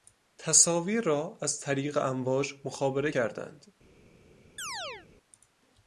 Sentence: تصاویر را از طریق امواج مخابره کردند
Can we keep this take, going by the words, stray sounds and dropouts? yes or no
no